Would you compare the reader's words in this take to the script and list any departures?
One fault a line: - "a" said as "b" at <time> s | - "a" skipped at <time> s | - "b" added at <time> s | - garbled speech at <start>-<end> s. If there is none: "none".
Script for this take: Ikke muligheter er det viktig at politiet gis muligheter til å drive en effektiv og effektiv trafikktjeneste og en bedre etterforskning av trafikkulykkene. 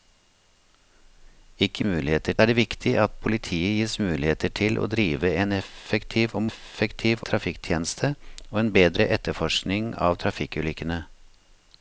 none